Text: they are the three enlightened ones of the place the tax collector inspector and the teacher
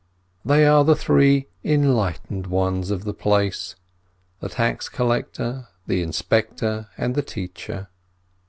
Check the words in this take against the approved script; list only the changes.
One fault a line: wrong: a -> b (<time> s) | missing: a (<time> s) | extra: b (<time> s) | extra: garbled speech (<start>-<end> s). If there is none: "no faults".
extra: the (5.9 s)